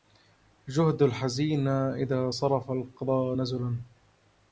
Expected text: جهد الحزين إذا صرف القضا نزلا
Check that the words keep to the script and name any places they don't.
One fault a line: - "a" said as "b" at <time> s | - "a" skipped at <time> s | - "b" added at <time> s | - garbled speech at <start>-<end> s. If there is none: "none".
none